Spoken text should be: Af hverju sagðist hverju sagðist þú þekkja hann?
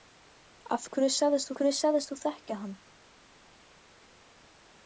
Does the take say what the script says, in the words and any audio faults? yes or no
yes